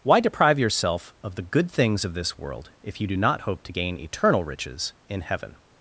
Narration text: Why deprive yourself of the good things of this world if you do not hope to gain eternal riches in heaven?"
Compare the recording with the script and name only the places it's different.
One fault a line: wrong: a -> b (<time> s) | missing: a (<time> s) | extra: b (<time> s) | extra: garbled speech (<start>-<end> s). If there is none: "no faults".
no faults